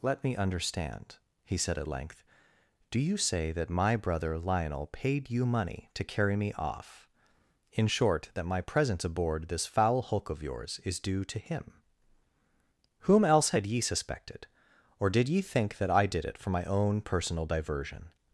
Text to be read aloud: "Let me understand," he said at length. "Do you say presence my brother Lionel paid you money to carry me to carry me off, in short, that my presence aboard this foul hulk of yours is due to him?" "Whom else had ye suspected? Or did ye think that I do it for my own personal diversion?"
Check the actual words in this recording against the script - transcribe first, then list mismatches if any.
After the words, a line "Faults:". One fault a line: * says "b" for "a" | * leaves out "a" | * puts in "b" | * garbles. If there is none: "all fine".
"Let me understand," he said at length. "Do you say that my brother Lionel paid you money to carry me off, in short, that my presence aboard this foul hulk of yours is due to him?" "Whom else had ye suspected? Or did ye think that I did it for my own personal diversion?"
Faults:
* says "that" for "presence"
* leaves out "to carry me"
* says "did" for "do"